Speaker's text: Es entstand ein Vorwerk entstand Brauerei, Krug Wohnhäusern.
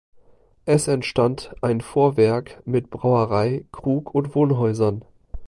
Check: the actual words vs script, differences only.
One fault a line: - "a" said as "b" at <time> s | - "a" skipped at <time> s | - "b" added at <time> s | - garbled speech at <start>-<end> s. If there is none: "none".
- "entstand" said as "mit" at 2.7 s
- "und" added at 4.2 s